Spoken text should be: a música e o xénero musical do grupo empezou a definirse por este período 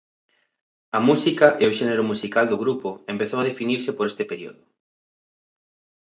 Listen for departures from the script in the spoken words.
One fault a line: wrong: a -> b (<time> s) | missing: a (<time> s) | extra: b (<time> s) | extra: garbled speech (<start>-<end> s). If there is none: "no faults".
no faults